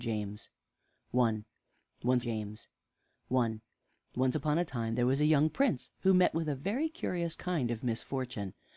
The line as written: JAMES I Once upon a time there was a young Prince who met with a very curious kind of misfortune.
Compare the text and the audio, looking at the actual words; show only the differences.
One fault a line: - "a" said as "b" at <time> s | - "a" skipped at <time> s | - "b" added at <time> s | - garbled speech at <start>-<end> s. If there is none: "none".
- "james I Once" added at 2.2 s